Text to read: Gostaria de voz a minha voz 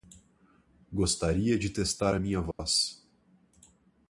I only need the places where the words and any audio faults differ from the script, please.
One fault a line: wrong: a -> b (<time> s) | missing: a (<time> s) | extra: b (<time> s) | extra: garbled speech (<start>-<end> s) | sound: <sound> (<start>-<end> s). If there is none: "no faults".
wrong: voz -> testar (1.7 s)
sound: dropout (2.5-2.6 s)